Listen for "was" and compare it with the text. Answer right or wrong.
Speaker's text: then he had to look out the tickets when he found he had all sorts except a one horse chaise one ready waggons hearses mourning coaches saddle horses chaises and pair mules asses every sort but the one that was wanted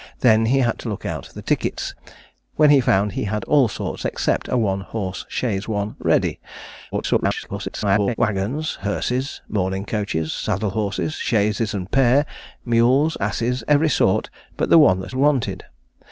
wrong